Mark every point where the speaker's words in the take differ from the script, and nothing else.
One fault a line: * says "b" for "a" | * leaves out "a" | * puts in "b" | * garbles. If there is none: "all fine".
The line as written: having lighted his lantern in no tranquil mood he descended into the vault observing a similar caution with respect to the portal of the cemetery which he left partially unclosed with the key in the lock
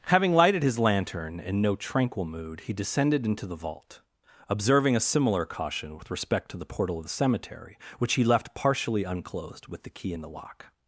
all fine